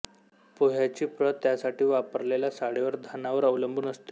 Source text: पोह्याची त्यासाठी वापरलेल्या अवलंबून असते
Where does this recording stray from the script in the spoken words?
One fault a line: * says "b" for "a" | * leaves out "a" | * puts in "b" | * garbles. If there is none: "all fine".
* puts in "प्रत"
* puts in "साळीवर धानावर"